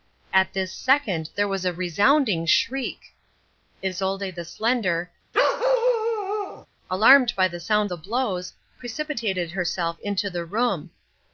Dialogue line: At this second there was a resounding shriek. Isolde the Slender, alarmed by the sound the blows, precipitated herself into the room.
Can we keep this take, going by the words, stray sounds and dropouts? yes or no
no